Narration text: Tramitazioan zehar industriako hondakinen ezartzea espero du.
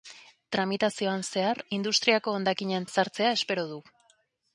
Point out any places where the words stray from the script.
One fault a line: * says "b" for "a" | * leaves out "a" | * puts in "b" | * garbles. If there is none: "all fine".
all fine